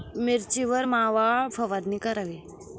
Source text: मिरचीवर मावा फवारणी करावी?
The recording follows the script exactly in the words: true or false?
true